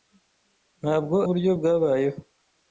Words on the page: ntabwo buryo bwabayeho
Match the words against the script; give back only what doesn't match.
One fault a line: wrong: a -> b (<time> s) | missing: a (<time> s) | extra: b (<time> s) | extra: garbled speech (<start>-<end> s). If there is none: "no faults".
no faults